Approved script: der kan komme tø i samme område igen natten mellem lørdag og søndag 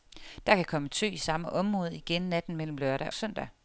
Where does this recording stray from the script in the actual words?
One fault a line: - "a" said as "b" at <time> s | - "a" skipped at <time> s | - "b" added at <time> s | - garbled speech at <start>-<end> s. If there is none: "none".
- "og" skipped at 3.1 s